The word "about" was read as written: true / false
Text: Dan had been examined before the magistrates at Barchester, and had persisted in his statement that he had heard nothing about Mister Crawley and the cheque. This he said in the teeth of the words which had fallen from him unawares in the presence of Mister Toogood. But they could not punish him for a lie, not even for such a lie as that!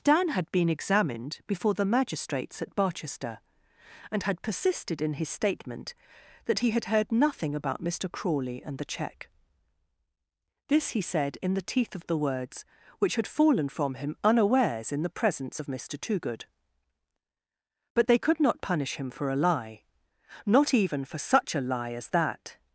true